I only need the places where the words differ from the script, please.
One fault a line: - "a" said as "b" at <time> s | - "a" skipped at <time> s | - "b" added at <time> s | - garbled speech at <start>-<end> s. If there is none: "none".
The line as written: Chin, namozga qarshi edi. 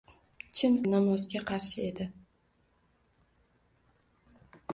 none